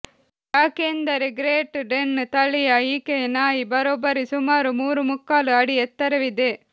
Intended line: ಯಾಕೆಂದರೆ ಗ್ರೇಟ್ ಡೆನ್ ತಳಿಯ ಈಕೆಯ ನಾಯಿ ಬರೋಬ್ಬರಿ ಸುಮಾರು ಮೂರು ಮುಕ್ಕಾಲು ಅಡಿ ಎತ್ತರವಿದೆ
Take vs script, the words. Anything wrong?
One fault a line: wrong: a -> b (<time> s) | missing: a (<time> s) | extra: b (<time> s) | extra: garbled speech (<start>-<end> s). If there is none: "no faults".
no faults